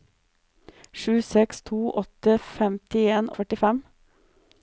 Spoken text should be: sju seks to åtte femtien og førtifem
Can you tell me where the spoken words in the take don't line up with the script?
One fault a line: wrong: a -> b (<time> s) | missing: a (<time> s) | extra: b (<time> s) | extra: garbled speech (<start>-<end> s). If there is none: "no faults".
no faults